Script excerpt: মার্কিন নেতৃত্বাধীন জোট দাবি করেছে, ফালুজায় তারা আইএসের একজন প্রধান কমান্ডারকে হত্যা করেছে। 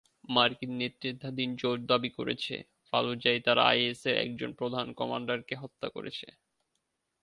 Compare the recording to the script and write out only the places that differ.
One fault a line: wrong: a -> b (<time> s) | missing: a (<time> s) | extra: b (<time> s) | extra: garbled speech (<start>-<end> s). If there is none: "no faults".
no faults